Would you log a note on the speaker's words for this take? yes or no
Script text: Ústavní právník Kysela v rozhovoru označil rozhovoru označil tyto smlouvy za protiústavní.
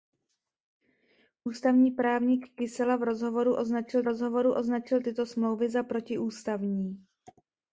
no